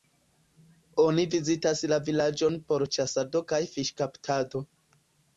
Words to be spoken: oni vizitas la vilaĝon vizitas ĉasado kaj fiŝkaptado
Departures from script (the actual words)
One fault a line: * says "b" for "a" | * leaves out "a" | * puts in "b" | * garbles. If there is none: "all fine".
* says "por" for "vizitas"